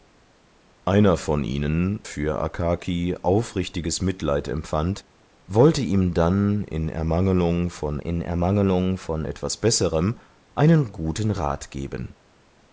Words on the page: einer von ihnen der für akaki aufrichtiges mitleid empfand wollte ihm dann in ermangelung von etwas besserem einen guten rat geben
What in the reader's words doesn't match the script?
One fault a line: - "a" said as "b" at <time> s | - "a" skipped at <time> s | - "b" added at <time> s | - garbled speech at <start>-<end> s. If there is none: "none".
- "der" skipped at 2.0 s
- "in ermangelung von" added at 8.0 s